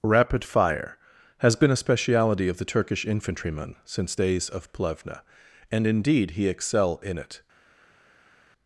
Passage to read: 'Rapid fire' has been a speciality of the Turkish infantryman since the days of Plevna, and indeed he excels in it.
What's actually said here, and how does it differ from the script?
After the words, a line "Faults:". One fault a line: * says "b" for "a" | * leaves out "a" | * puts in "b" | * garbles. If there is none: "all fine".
'Rapid fire' has been a speciality of the Turkish infantryman since days of Plevna, and indeed he excel in it.
Faults:
* leaves out "the"
* says "excel" for "excels"